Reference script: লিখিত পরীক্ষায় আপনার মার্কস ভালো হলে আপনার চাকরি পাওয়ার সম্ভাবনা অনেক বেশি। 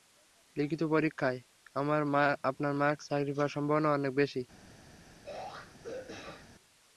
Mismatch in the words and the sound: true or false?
true